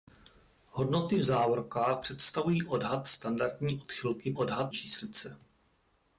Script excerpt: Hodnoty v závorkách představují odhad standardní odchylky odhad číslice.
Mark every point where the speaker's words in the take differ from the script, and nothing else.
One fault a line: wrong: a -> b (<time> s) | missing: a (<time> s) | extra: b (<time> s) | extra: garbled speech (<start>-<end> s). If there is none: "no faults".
no faults